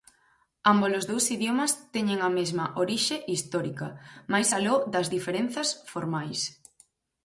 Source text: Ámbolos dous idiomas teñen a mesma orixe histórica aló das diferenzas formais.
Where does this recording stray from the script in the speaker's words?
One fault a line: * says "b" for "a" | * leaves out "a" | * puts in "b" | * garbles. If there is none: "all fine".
* puts in "máis"